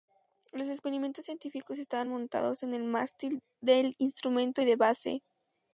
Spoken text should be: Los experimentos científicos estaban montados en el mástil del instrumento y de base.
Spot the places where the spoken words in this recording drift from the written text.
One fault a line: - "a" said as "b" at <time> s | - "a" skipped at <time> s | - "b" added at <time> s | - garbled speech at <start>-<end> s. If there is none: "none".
none